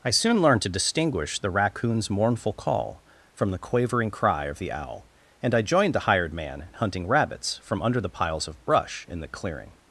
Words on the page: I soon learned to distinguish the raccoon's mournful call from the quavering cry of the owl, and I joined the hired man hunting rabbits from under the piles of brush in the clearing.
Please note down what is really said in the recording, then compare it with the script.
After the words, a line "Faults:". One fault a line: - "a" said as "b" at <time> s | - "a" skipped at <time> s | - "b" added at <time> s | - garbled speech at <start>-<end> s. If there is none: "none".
I soon learned to distinguish the raccoon's mournful call from the quavering cry of the owl, and I joined the hired man hunting rabbits from under the piles of brush in the clearing.
Faults:
none